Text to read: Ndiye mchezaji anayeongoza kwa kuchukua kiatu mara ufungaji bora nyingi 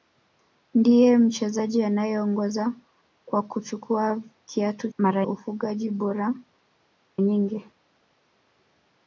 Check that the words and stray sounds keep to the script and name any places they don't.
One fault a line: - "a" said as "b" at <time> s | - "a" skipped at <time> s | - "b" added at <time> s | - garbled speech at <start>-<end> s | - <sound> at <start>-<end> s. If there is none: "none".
none